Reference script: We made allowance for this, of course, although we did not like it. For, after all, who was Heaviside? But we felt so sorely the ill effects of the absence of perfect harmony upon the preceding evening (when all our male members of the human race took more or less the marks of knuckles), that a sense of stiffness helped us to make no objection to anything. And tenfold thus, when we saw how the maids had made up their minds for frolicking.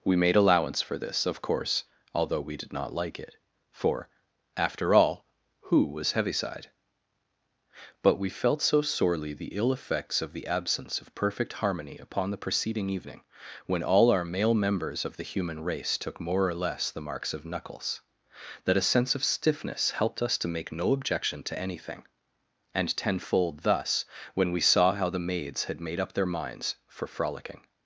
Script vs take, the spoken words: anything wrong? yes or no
no